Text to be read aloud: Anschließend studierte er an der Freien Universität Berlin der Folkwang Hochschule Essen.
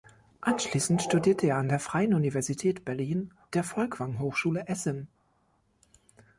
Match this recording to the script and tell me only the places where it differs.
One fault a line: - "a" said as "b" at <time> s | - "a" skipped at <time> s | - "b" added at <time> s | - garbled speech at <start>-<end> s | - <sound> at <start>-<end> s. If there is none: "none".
none